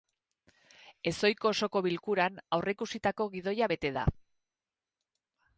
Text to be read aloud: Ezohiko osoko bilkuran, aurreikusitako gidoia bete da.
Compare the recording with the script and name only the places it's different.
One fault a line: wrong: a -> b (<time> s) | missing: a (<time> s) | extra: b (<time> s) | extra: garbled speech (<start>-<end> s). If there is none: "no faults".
no faults